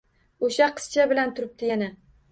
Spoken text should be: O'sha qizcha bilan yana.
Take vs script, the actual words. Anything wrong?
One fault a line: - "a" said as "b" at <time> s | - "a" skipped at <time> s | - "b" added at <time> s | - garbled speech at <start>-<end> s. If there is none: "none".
- "turibdi" added at 1.4 s